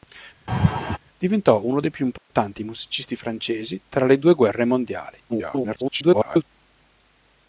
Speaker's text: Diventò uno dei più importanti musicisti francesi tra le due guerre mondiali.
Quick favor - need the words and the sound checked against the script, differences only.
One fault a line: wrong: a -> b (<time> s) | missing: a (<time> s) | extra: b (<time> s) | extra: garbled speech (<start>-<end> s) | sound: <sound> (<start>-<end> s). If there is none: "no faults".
sound: laugh (0.5-1.0 s)
sound: dropout (2.2-2.3 s)
extra: garbled speech (5.3-6.4 s)